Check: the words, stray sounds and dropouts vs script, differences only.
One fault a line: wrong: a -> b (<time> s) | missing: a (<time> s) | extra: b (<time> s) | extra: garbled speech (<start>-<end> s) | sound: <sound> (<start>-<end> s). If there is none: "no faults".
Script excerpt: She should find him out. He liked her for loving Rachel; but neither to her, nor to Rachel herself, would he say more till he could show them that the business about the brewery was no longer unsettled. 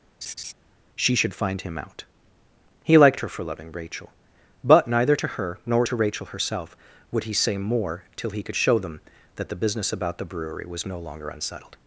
sound: laugh (0.2-0.5 s)